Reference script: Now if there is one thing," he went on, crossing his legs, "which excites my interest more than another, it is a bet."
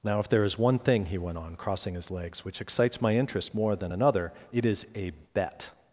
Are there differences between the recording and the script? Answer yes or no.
no